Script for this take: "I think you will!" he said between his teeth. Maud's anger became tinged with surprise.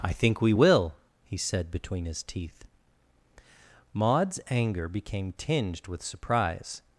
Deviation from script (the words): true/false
true